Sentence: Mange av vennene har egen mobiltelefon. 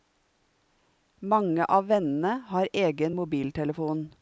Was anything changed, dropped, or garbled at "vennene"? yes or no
no